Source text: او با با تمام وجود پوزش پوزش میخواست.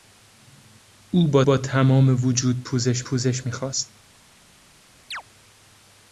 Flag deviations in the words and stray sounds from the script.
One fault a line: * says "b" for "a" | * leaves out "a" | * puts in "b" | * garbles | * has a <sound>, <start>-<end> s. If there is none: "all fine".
* has a chirp, 5.1-5.2 s